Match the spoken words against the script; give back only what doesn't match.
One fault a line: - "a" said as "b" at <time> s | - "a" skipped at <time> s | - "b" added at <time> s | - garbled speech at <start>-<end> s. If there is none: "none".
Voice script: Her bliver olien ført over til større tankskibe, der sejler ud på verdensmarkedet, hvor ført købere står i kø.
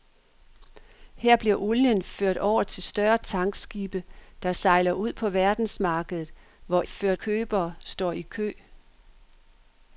none